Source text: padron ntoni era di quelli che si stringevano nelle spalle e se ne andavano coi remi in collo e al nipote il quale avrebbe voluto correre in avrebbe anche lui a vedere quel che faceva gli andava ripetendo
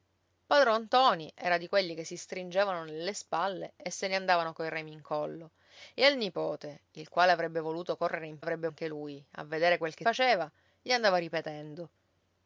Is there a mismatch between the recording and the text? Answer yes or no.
no